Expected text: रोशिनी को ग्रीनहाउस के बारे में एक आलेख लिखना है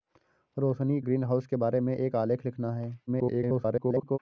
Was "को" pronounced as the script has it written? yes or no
no